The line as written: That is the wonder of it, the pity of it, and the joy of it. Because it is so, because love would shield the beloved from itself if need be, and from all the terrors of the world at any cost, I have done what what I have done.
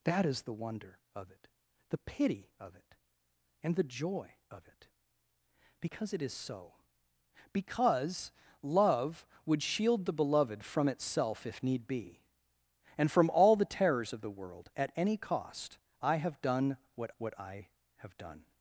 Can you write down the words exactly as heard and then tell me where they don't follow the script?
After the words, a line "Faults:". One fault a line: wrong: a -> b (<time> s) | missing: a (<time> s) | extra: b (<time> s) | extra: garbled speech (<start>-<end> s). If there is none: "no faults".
That is the wonder of it, the pity of it, and the joy of it. Because it is so, because love would shield the beloved from itself if need be, and from all the terrors of the world at any cost, I have done what what I have done.
Faults:
no faults